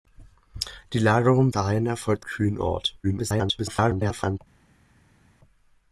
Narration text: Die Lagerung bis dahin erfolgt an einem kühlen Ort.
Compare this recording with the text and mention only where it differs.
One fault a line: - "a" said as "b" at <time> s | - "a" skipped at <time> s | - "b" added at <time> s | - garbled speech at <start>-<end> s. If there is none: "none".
- "bis" skipped at 1.5 s
- "an einem" skipped at 2.2 s
- garbled speech at 3.0-4.4 s